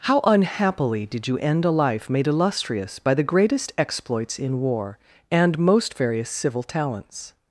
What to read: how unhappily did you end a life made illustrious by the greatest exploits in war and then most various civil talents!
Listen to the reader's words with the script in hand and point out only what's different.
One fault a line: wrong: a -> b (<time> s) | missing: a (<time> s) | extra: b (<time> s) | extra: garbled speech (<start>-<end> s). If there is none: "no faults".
missing: then (5.6 s)